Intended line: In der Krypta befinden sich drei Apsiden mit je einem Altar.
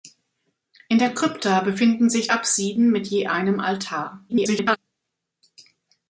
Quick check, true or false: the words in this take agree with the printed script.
false